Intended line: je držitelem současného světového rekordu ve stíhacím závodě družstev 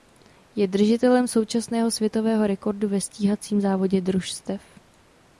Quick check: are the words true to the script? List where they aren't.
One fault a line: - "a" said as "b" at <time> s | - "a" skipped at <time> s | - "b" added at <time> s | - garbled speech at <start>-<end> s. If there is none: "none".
none